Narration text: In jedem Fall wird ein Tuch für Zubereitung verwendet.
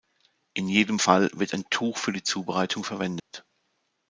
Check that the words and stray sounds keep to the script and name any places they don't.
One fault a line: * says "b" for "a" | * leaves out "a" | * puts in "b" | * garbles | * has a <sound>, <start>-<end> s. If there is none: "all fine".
* puts in "die"
* has a dropout, 3.2-3.3 s